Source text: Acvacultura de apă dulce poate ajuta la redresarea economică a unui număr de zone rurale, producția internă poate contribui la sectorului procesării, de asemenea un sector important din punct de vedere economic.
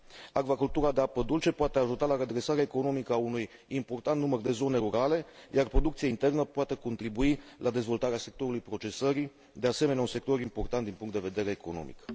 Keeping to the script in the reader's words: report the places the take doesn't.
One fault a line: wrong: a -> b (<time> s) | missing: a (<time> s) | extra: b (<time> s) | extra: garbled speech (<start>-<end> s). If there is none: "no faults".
extra: important (3.7 s)
extra: iar (5.5 s)
extra: dezvoltarea (7.7 s)